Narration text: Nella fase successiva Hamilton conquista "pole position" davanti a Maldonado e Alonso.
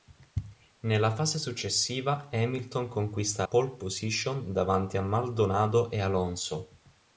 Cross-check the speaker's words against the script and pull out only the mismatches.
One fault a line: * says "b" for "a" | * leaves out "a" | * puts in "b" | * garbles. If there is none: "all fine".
all fine